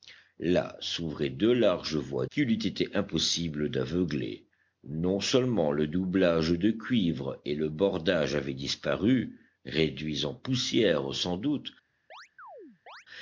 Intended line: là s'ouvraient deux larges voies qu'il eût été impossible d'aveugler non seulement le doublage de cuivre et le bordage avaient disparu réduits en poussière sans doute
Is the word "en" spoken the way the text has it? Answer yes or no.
yes